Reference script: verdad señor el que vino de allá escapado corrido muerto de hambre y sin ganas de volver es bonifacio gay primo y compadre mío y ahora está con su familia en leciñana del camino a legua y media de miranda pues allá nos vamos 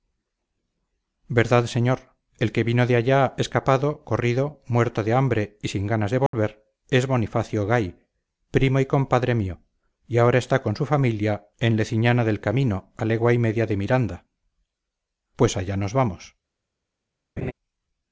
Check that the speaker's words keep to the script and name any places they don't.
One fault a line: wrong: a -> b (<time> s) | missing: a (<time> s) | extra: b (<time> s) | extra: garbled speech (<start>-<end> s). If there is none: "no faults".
no faults